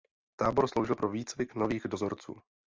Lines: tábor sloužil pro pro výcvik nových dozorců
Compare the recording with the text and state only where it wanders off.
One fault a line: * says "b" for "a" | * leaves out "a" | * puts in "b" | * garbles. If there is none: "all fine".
* leaves out "pro"